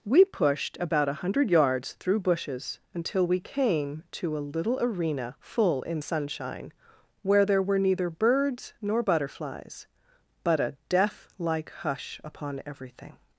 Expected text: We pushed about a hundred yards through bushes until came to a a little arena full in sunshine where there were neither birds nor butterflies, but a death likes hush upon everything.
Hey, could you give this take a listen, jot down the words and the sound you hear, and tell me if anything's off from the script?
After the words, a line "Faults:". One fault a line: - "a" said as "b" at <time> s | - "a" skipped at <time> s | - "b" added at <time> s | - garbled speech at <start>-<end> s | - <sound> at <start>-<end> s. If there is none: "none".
We pushed about a hundred yards through bushes until we came to a little arena full in sunshine where there were neither birds nor butterflies, but a death like hush upon everything.
Faults:
- "we" added at 3.3 s
- "a" skipped at 4.5 s
- "likes" said as "like" at 11.4 s